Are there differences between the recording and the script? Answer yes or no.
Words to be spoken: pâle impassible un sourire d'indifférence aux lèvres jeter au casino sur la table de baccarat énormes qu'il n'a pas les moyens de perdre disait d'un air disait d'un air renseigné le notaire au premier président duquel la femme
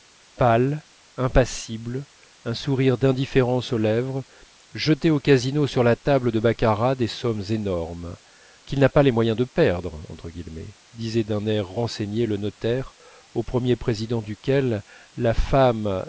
yes